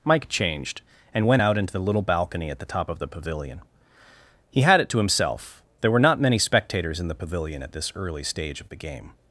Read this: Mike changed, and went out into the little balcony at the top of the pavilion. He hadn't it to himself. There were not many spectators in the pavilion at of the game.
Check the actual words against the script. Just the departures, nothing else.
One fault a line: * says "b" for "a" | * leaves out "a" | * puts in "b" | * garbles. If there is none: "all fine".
* says "had" for "hadn't"
* puts in "this early stage"